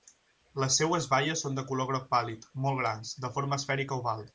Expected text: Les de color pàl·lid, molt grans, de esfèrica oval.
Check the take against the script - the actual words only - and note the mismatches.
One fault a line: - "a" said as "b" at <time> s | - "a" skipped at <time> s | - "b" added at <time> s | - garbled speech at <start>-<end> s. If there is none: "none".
- "seues baies són" added at 0.8 s
- "groc" added at 1.9 s
- "forma" added at 3.4 s